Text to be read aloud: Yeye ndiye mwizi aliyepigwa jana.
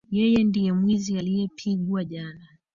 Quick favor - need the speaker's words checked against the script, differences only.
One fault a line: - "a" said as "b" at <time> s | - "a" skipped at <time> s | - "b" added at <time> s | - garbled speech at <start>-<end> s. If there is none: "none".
none